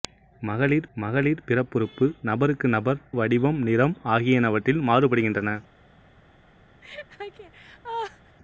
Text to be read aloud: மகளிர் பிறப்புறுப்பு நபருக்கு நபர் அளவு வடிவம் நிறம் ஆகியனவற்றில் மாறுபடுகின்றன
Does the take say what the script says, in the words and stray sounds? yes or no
no